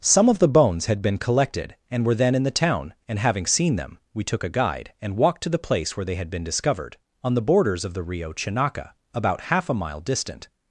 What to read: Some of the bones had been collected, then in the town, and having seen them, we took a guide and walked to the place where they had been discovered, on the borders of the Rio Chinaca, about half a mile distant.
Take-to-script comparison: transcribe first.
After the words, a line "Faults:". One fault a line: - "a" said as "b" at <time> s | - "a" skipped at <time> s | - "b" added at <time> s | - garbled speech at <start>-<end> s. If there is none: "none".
Some of the bones had been collected, and were then in the town, and having seen them, we took a guide and walked to the place where they had been discovered, on the borders of the Rio Chinaca, about half a mile distant.
Faults:
- "and were" added at 1.9 s